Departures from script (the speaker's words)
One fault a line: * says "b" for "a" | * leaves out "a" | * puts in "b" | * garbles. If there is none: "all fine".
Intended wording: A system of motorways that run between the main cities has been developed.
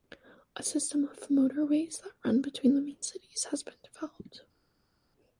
all fine